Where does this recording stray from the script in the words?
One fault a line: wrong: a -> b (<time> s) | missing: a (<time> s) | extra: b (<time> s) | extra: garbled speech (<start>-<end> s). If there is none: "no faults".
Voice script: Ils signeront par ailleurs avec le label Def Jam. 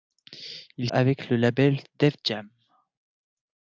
missing: signeront par ailleurs (0.9 s)